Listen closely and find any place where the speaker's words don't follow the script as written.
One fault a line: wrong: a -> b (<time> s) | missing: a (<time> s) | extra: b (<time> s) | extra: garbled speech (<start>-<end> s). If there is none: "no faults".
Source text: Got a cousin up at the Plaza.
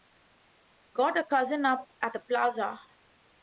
no faults